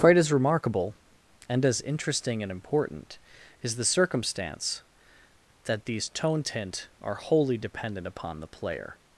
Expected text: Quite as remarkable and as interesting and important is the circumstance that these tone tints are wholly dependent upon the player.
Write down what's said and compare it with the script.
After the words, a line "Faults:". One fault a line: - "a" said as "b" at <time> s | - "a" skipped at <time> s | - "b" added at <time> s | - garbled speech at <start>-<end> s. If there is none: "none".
Quite as remarkable and as interesting and important is the circumstance that these tone tint are wholly dependent upon the player.
Faults:
- "tints" said as "tint" at 6.4 s